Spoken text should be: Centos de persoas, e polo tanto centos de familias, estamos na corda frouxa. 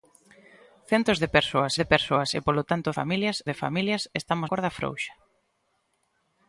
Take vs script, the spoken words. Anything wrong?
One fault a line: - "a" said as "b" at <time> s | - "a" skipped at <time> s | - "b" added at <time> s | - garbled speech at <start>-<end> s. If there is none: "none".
- "de persoas" added at 1.8 s
- "centos" said as "familias" at 3.0 s
- "na" skipped at 4.5 s